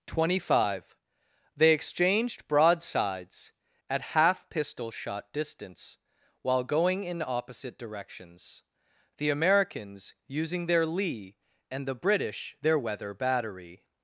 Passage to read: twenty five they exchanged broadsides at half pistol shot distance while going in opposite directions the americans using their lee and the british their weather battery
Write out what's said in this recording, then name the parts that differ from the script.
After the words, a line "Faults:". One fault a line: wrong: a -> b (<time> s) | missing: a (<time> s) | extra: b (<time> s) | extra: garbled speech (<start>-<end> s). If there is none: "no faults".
twenty five they exchanged broadsides at half pistol shot distance while going in opposite directions the americans using their lee and the british their weather battery
Faults:
no faults